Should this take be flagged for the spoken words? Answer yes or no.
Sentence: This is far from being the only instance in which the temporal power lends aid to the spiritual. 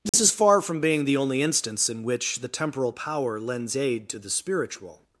no